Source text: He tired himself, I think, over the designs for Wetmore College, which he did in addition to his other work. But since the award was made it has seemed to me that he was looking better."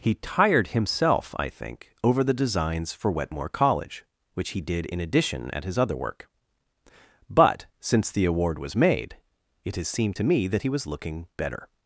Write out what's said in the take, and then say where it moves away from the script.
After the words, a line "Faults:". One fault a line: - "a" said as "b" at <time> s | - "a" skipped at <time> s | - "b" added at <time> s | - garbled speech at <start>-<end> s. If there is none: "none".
He tired himself, I think, over the designs for Wetmore College, which he did in addition at his other work. But since the award was made it has seemed to me that he was looking better."
Faults:
- "to" said as "at" at 5.5 s